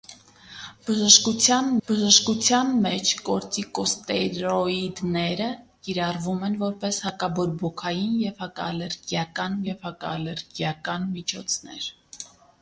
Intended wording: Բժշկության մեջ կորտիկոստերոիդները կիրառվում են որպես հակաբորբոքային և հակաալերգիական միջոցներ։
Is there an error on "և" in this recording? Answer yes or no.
no